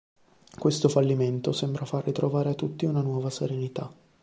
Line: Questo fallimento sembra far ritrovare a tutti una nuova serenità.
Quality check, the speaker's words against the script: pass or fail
pass